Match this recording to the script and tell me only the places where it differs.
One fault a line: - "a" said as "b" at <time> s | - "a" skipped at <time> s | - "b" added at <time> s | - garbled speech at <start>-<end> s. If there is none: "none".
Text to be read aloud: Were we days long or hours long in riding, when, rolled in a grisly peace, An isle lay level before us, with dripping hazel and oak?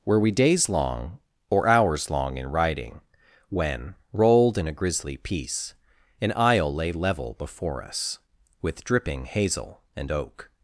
none